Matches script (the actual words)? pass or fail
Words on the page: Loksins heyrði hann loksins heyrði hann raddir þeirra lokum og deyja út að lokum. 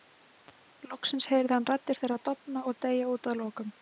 fail